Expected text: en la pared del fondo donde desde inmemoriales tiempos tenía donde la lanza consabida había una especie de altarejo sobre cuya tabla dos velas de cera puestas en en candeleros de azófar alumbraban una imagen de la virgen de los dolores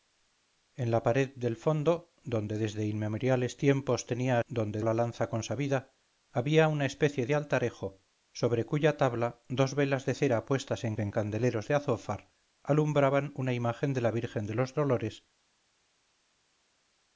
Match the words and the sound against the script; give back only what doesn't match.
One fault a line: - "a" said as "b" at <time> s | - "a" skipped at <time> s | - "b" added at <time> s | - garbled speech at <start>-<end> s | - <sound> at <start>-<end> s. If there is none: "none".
none